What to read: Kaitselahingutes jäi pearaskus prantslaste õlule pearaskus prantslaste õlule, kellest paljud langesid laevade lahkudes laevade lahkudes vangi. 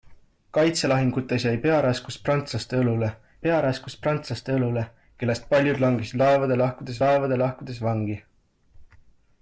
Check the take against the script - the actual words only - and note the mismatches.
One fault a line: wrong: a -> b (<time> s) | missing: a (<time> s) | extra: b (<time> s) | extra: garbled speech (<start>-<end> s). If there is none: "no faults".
no faults